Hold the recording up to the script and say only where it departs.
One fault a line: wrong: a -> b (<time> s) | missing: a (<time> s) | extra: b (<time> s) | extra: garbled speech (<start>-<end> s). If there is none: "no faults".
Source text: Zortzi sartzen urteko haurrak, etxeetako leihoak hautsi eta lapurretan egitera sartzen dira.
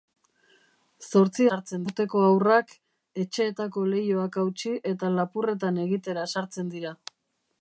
no faults